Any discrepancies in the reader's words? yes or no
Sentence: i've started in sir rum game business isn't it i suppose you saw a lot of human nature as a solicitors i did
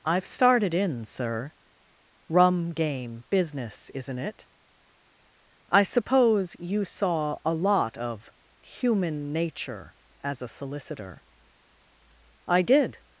yes